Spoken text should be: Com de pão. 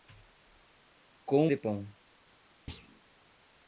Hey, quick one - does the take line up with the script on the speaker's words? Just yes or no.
yes